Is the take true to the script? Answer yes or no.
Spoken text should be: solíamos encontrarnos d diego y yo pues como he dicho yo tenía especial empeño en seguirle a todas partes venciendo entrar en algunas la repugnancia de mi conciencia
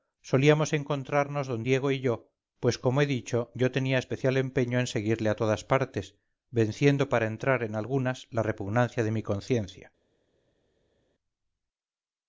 no